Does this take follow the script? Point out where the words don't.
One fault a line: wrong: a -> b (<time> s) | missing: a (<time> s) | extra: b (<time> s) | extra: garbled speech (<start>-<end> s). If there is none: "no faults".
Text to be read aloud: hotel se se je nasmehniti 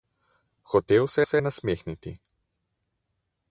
no faults